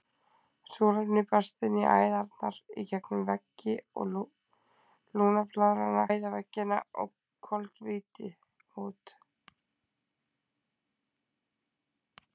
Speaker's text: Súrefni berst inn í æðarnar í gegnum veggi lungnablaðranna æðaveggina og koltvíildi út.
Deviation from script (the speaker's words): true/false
false